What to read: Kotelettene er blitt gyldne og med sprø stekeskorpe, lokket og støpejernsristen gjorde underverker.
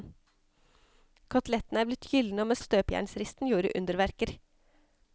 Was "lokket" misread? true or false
true